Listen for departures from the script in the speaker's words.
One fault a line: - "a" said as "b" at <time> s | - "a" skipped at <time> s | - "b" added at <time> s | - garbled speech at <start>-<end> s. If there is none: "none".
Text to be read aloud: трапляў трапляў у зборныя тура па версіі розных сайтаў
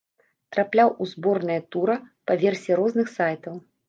- "трапляў" skipped at 0.9 s